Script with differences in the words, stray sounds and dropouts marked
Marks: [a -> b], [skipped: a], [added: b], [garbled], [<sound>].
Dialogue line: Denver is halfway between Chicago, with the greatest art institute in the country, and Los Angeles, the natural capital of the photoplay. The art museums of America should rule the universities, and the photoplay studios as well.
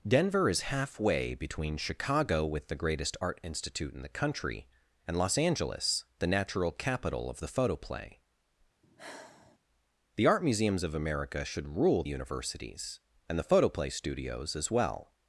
Denver is halfway between Chicago, with the greatest art institute in the country, and Los Angeles, the natural capital of the photoplay. [sigh] The art museums of America should rule [skipped: the] universities, and the photoplay studios as well.